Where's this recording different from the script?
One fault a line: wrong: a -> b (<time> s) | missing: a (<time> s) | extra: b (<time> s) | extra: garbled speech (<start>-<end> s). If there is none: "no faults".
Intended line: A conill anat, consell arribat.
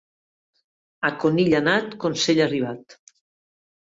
no faults